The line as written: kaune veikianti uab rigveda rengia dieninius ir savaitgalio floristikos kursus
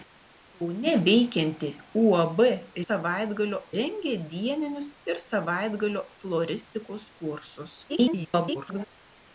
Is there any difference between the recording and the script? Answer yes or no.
yes